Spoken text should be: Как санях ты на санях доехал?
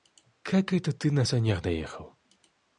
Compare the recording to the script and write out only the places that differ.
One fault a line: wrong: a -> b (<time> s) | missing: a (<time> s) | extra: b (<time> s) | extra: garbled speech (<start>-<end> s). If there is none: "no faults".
wrong: санях -> это (0.7 s)